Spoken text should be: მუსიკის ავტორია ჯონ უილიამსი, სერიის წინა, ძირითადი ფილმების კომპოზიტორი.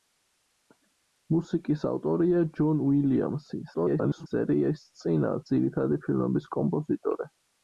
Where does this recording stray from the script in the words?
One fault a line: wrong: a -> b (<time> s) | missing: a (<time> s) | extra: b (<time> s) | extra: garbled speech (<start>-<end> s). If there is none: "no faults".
extra: garbled speech (3.7-4.3 s)